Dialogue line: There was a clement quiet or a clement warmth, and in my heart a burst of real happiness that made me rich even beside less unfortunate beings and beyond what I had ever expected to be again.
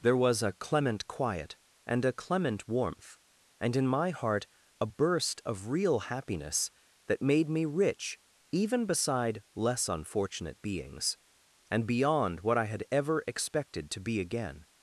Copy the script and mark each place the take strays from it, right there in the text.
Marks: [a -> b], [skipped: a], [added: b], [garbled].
There was a clement quiet [or -> and] a clement warmth, and in my heart a burst of real happiness that made me rich even beside less unfortunate beings and beyond what I had ever expected to be again.